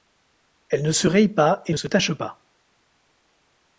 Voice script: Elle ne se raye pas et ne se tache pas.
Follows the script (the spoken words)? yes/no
yes